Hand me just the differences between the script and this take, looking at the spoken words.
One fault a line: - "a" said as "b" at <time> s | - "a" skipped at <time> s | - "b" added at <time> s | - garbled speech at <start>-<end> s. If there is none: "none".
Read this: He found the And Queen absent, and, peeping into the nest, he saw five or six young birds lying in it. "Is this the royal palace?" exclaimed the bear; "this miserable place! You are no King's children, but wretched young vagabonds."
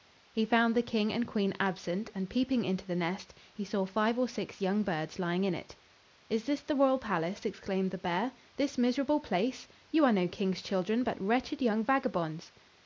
- "King" added at 0.8 s